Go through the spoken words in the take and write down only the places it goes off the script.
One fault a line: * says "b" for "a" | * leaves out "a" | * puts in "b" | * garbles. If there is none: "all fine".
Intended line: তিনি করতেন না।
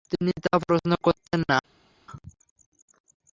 * puts in "তা প্রশ্ন"